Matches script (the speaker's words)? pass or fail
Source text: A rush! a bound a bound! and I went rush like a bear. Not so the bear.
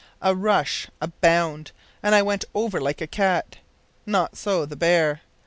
fail